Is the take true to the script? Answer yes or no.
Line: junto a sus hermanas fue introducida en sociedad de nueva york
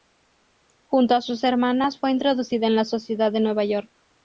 no